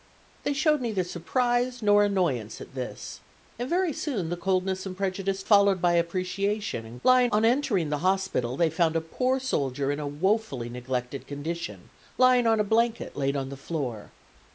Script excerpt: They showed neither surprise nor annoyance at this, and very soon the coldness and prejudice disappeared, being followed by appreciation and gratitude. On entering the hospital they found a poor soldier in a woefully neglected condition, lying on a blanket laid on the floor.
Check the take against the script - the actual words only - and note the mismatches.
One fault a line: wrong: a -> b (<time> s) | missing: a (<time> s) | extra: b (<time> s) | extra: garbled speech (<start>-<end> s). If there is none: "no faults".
missing: disappeared being (5.4 s)
wrong: gratitude -> lying (7.0 s)